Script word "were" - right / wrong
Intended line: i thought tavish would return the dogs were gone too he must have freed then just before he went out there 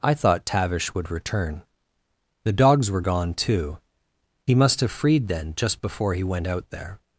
right